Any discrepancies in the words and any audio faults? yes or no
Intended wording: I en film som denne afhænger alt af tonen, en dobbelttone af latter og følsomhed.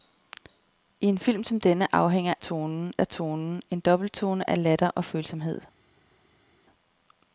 yes